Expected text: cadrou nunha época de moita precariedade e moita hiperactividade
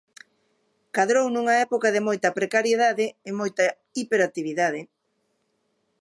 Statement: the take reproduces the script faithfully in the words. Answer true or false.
true